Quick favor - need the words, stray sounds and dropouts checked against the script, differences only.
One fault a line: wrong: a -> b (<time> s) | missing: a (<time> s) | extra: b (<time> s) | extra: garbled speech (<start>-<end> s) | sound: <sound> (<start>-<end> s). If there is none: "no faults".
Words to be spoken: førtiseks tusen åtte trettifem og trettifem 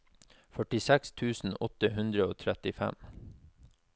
wrong: trettifem -> hundre (2.0 s)